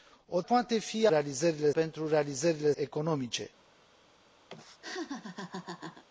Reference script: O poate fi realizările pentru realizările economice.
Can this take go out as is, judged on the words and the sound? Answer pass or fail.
fail